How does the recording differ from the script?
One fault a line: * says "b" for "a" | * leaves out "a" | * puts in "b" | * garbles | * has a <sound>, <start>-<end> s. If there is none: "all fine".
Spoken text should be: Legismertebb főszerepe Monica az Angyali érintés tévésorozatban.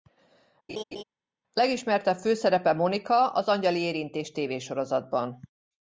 * has a laugh, 0.7-1.0 s